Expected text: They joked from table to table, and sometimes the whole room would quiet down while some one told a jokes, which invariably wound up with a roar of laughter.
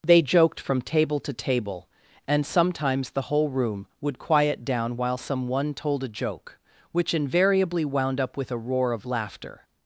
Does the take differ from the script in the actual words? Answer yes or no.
yes